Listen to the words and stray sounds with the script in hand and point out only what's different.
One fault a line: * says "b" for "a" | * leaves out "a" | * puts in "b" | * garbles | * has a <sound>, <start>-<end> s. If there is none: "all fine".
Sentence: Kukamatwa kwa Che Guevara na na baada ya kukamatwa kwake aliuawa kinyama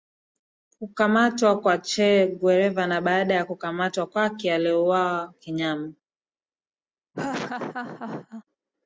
* leaves out "na"
* has a laugh, 7.1-8.4 s